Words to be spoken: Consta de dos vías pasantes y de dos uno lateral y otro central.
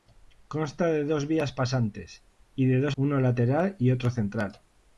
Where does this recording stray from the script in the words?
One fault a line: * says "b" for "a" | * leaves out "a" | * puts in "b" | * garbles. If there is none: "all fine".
all fine